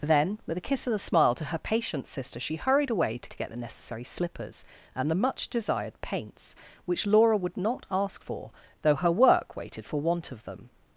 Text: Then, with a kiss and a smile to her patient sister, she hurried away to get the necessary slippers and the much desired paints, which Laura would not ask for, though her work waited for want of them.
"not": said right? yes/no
yes